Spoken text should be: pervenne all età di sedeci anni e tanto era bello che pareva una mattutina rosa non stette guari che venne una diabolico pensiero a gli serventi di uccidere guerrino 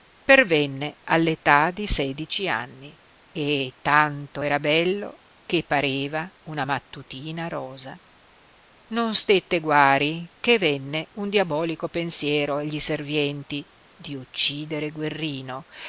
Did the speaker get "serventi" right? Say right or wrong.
right